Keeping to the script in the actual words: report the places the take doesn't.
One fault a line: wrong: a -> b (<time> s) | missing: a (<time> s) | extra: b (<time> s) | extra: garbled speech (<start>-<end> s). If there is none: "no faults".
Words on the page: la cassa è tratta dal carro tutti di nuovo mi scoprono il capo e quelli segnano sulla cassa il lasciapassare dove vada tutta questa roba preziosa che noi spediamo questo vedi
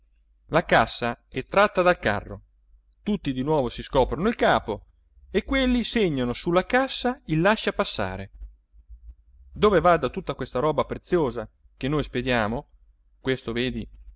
wrong: mi -> si (3.7 s)